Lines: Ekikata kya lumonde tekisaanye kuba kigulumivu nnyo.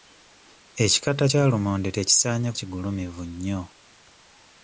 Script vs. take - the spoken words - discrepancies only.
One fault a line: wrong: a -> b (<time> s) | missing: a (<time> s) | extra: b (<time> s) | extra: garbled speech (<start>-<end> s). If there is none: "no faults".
missing: kuba (2.5 s)